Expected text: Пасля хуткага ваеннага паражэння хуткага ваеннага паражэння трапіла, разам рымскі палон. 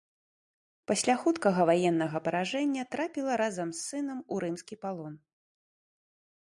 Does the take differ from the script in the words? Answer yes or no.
yes